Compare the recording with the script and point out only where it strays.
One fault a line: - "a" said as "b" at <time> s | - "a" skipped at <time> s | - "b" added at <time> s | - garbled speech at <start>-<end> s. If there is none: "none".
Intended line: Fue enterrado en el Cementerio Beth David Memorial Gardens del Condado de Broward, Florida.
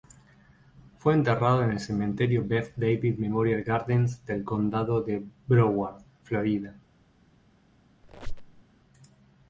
none